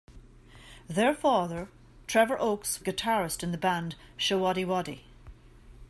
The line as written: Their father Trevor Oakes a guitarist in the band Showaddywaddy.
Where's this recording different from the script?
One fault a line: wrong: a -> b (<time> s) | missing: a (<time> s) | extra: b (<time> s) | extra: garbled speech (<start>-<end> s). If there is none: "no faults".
no faults